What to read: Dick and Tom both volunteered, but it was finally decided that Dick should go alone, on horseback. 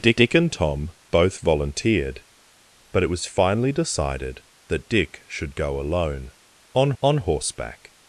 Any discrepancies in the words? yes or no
yes